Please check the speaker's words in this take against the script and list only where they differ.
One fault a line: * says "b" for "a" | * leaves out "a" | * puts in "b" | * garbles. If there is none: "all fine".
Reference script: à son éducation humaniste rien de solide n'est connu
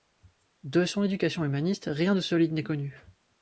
* says "de" for "à"